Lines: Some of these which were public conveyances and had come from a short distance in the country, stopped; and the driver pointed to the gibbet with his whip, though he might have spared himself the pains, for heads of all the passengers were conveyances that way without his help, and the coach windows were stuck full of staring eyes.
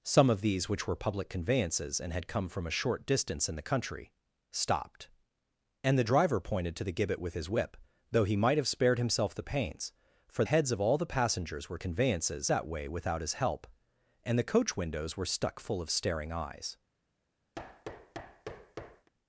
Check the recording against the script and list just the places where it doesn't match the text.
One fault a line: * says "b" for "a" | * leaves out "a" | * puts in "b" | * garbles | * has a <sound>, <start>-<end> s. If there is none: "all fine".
* has a thud, 17.5-19.1 s